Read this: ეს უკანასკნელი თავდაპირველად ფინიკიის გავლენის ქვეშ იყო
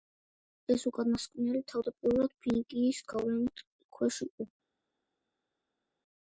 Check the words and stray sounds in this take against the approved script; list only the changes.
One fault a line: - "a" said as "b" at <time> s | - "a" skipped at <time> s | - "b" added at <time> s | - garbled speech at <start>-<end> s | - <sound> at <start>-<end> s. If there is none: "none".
none